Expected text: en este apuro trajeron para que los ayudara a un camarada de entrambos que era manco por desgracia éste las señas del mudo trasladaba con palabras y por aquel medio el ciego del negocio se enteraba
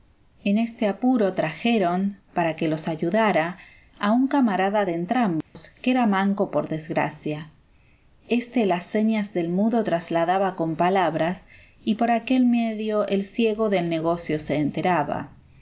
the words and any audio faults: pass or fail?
fail